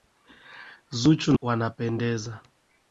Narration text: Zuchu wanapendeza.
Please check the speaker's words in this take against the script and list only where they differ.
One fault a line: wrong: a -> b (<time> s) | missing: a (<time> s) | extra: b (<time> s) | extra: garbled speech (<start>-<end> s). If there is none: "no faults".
no faults